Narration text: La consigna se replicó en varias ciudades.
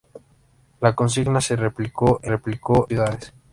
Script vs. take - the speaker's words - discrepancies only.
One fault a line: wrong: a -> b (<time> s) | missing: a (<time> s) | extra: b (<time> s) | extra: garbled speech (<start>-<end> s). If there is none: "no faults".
wrong: varias -> replicó (2.2 s)